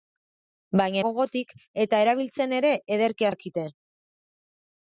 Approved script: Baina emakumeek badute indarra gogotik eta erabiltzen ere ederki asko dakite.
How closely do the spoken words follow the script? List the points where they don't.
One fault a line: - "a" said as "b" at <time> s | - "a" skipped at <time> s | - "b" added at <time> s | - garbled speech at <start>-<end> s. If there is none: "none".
- "emakumeek badute indarra" skipped at 1.0 s
- "asko" skipped at 3.3 s